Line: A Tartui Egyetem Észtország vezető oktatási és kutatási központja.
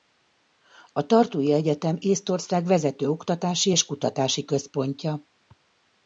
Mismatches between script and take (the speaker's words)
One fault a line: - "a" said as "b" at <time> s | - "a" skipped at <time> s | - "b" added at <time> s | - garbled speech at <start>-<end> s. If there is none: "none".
none